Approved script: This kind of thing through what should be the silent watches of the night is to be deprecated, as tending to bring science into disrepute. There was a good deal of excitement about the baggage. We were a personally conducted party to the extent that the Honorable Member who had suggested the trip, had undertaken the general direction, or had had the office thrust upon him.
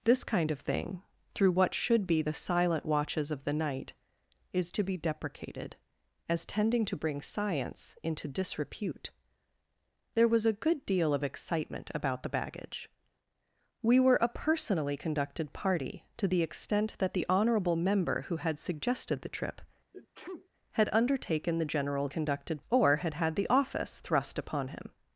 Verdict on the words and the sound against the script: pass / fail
fail